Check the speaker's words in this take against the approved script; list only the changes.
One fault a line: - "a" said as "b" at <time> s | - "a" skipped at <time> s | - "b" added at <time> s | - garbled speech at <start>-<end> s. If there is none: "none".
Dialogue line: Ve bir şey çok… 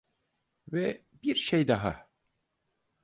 - "çok" said as "daha" at 1.7 s